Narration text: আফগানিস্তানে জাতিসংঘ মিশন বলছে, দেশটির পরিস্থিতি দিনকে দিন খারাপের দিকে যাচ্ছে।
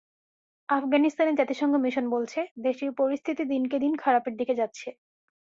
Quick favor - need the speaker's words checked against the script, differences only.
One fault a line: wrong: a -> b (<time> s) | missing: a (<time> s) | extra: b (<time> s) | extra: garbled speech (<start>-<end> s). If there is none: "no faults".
no faults